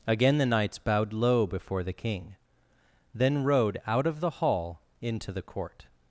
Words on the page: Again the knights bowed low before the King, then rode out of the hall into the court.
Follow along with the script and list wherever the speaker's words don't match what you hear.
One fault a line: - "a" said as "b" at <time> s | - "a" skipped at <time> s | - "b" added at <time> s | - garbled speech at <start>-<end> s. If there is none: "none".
none